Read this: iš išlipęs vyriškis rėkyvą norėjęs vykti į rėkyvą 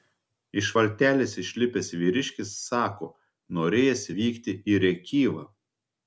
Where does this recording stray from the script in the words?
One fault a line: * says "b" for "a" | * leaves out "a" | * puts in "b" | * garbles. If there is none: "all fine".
* puts in "valtelės"
* says "sako" for "rėkyvą"